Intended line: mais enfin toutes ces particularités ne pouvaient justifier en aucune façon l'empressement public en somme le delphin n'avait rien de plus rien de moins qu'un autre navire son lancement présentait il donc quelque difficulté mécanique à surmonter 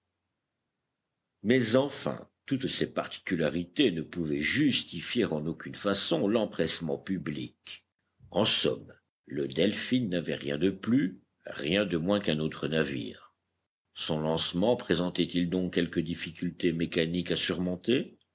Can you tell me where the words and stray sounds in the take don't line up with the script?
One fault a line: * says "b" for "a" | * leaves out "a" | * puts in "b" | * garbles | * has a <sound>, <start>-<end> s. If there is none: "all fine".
all fine